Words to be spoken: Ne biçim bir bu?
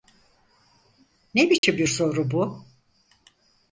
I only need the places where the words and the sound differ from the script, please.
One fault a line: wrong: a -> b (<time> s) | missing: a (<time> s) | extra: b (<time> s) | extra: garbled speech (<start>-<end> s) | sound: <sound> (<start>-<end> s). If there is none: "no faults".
sound: dropout (1.6-1.6 s)
extra: soru (1.8 s)